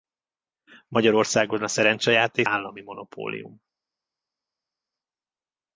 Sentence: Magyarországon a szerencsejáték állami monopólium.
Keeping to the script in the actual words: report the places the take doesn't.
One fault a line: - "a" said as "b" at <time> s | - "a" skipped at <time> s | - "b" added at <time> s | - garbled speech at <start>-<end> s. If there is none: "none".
none